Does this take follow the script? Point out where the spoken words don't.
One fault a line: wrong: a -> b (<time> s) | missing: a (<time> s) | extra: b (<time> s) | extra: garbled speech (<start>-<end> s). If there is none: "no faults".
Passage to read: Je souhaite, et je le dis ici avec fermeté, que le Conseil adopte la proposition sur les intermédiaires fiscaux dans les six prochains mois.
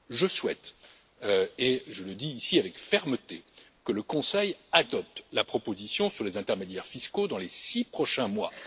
no faults